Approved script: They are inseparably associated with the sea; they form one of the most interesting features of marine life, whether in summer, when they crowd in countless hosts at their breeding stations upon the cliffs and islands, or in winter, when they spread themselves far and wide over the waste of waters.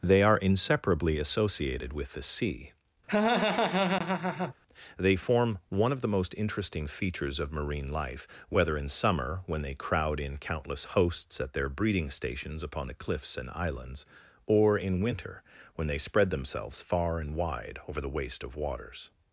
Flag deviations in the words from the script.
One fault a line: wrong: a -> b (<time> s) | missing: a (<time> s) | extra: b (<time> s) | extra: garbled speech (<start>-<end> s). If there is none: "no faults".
no faults